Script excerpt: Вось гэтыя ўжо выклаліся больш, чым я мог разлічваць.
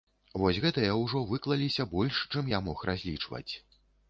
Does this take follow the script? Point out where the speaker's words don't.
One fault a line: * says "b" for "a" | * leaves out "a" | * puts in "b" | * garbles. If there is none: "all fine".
all fine